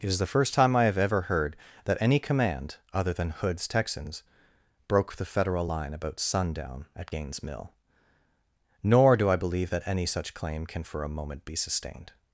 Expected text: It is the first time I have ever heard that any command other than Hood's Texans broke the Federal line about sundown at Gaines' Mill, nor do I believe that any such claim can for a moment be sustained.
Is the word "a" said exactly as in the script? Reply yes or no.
yes